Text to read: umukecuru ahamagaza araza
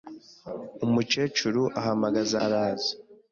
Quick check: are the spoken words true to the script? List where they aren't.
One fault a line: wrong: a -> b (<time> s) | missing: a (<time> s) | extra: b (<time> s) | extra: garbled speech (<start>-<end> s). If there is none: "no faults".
no faults